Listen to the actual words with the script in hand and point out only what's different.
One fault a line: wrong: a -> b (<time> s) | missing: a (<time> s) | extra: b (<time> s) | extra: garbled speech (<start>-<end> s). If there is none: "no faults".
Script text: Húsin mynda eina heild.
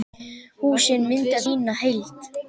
no faults